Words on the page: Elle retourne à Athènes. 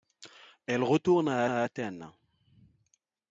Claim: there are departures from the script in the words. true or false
true